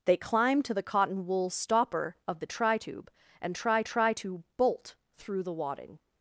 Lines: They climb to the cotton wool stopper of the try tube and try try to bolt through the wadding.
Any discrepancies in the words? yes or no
no